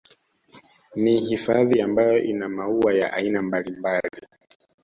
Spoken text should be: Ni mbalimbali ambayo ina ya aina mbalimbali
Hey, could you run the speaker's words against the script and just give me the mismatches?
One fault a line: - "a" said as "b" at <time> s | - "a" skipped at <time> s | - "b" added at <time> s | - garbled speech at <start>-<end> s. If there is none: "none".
- "mbalimbali" said as "hifadhi" at 1.2 s
- "maua" added at 2.5 s